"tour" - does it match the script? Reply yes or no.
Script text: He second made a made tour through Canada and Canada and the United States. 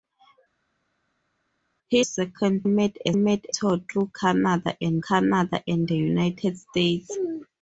yes